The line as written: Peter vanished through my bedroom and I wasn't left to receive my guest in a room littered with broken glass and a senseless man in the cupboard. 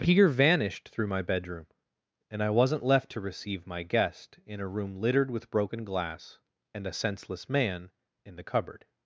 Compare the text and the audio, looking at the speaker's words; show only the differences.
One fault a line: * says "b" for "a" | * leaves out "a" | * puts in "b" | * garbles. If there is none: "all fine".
all fine